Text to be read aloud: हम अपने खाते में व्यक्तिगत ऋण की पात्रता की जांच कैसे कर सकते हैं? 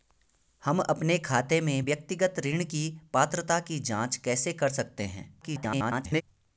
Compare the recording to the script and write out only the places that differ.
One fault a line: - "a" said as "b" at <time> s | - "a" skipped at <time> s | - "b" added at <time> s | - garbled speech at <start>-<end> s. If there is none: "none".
- garbled speech at 5.4-6.2 s